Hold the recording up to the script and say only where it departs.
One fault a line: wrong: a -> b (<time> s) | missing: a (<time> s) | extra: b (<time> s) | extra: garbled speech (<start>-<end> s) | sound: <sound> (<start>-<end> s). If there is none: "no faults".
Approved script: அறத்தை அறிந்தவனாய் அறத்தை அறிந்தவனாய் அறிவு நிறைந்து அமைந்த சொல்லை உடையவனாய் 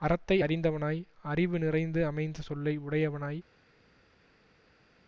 missing: அறத்தை அறிந்தவனாய் (1.0 s)